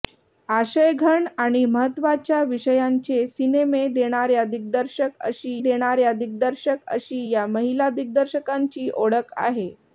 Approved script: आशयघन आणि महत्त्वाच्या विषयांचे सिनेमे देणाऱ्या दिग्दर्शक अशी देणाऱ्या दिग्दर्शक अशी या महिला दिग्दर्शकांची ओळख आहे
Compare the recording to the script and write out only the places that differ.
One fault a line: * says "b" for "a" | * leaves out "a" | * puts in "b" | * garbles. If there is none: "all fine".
all fine